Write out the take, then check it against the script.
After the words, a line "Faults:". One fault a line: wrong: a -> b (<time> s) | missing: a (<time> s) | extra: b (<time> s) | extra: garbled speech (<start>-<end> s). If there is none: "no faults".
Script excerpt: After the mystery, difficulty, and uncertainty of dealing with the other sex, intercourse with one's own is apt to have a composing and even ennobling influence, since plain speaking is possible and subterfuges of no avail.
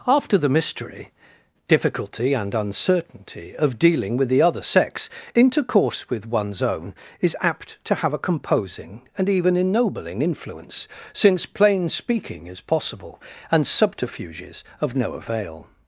After the mystery, difficulty, and uncertainty of dealing with the other sex, intercourse with one's own is apt to have a composing and even ennobling influence, since plain speaking is possible and subterfuges of no avail.
Faults:
no faults